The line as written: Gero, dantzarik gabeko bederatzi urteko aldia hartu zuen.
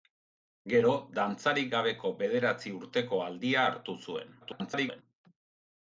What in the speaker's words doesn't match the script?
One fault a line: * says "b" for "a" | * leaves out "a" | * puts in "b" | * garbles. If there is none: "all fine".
* garbles